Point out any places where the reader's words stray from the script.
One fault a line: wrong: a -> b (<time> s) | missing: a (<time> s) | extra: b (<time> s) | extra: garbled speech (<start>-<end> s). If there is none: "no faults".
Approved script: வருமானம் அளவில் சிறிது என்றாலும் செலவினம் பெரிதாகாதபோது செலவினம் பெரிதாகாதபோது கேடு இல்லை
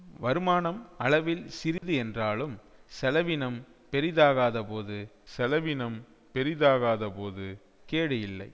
no faults